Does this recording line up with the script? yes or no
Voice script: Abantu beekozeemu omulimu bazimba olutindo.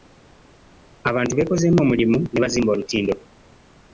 no